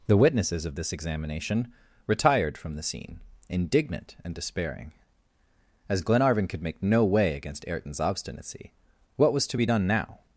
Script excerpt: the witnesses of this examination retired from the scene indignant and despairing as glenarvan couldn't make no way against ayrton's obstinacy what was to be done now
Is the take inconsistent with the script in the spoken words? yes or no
yes